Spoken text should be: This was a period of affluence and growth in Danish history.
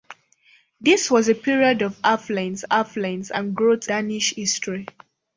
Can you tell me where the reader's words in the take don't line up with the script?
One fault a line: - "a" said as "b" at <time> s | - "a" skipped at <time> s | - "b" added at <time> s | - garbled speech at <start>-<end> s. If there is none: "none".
- "affluence" added at 2.7 s
- "in" skipped at 3.9 s